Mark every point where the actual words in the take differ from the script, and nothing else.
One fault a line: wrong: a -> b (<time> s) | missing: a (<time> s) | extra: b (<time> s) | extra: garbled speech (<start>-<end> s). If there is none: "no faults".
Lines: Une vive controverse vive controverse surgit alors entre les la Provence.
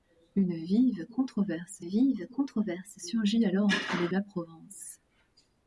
no faults